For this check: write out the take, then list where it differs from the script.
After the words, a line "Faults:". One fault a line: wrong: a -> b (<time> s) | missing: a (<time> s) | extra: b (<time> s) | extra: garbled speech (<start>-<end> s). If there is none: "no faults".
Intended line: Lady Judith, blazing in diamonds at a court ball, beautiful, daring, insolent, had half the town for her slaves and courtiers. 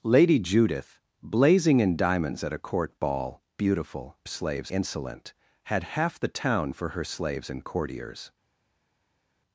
Lady Judith, blazing in diamonds at a court ball, beautiful, slaves, insolent, had half the town for her slaves and courtiers.
Faults:
wrong: daring -> slaves (4.2 s)